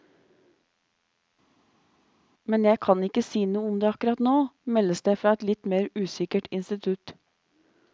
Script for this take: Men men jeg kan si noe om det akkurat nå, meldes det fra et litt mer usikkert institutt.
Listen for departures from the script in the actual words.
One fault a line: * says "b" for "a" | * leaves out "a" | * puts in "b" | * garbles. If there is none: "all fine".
* leaves out "men"
* puts in "ikke"